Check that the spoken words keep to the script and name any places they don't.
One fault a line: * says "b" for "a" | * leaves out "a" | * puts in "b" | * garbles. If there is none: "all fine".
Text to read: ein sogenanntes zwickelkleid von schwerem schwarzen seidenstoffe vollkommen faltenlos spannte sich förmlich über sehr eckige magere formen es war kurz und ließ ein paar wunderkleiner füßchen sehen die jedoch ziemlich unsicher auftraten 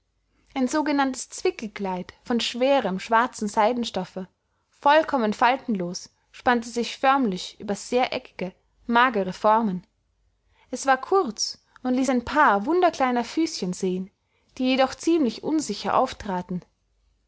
all fine